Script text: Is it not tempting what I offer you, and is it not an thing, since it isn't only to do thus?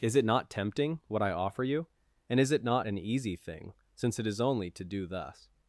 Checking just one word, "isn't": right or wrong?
wrong